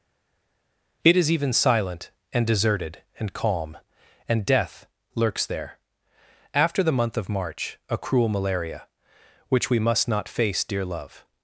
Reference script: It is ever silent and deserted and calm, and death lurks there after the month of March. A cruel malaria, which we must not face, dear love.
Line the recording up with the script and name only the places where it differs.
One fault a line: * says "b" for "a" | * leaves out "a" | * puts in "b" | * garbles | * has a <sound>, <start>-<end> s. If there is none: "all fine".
* says "even" for "ever"